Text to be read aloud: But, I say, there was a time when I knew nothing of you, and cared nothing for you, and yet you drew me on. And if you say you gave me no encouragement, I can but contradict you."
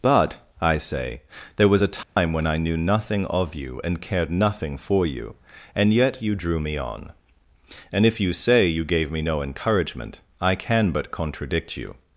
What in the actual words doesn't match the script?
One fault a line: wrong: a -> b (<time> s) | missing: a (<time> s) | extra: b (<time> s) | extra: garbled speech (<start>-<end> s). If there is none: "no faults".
no faults